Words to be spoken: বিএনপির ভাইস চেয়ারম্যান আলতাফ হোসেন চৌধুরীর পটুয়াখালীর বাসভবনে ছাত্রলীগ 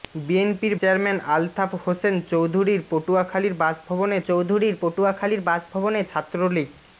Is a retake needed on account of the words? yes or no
yes